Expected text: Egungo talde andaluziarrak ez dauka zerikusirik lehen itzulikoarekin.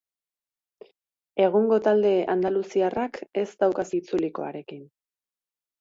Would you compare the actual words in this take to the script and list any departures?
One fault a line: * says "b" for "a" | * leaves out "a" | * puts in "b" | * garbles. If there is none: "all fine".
* leaves out "zerikusirik lehen"